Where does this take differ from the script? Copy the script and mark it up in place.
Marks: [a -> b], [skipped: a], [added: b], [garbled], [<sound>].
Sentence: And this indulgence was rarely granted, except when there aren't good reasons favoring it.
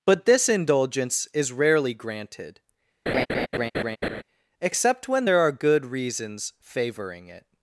[And -> But] this indulgence [was -> is] rarely granted, [laugh] except when there [aren't -> are] good reasons favoring it.